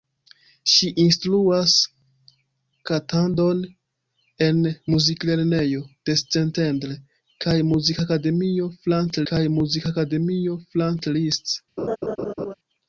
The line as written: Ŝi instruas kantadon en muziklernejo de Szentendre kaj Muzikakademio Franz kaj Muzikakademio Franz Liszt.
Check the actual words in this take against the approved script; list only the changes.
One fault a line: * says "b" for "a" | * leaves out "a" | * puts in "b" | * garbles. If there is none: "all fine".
all fine